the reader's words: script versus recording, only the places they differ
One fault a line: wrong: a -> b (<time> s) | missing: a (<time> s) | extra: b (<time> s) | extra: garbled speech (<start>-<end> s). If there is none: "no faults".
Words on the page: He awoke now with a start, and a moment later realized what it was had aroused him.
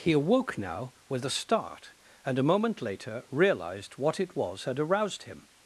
no faults